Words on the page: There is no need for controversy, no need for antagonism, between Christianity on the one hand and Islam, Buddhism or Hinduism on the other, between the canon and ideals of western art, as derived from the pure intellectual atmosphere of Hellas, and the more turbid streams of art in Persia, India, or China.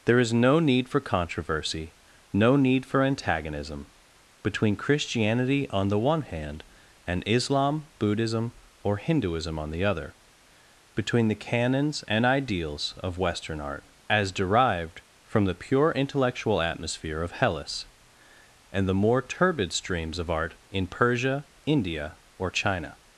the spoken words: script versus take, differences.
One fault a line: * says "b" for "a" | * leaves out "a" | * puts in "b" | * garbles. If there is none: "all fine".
* says "canons" for "canon"